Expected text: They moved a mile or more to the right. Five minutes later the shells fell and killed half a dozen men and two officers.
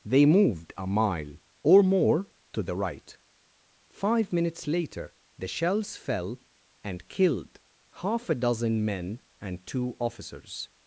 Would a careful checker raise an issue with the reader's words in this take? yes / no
no